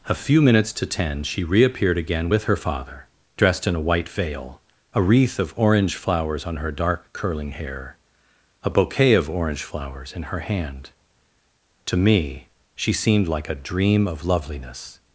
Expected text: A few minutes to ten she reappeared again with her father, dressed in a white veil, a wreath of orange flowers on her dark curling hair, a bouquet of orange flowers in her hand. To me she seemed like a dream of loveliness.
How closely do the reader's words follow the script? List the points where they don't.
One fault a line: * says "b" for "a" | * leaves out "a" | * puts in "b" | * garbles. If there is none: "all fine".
all fine